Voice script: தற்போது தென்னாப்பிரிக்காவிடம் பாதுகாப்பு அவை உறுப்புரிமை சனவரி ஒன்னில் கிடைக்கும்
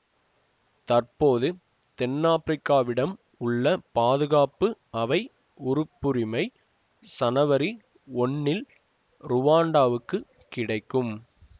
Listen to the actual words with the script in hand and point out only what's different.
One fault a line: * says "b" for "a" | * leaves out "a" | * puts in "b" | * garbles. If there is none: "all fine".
* puts in "உள்ள"
* puts in "ருவாண்டாவுக்குக்"